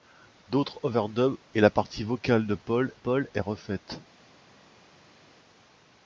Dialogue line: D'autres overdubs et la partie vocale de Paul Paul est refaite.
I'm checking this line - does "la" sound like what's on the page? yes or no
yes